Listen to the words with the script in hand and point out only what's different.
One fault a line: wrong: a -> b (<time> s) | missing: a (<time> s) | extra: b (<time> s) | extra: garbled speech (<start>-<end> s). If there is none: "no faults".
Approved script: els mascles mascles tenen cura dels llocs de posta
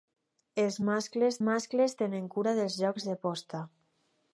no faults